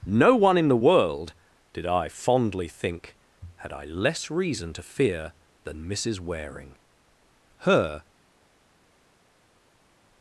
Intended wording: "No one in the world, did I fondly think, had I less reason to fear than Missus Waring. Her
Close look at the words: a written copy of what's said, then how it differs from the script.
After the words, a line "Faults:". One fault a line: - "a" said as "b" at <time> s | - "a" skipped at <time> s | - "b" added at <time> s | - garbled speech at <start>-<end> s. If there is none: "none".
"No one in the world, did I fondly think, had I less reason to fear than Missus Waring. Her
Faults:
none